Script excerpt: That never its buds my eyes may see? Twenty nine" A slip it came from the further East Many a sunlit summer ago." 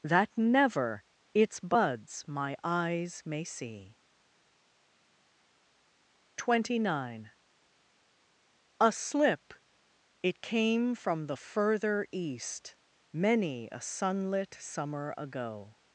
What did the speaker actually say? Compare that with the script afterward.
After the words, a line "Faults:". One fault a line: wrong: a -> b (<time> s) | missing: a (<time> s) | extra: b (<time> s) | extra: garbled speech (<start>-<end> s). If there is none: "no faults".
That never its buds my eyes may see? Twenty nine" A slip it came from the further East Many a sunlit summer ago."
Faults:
no faults